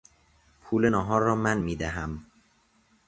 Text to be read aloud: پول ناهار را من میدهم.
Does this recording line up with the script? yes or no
yes